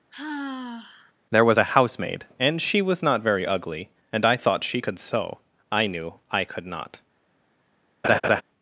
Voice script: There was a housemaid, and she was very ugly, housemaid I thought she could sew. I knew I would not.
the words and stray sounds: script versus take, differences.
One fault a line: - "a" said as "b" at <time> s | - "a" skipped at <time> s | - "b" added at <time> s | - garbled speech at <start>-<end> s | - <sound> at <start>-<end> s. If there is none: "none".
- sigh at 0.1-1.1 s
- "not" added at 3.0 s
- "housemaid" said as "and" at 4.1 s
- "would" said as "could" at 6.4 s
- laugh at 8.0-8.4 s